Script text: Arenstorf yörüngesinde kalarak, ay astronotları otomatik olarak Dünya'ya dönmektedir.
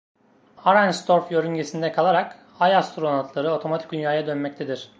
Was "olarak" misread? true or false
true